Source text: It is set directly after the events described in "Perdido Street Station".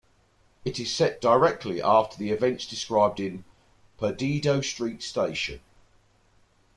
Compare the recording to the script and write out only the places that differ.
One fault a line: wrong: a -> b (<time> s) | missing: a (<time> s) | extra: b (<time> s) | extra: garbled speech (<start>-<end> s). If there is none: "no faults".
no faults